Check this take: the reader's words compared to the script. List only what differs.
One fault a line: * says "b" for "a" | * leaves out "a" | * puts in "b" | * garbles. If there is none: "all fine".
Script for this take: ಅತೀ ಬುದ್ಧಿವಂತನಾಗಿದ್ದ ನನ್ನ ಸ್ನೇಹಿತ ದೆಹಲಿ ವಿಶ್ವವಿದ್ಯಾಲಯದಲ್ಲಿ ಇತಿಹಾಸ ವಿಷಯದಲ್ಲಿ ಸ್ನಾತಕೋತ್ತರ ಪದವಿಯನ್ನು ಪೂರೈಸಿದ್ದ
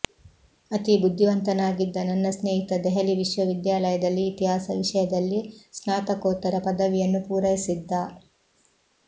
all fine